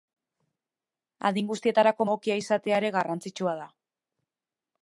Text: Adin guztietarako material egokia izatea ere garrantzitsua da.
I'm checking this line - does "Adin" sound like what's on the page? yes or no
yes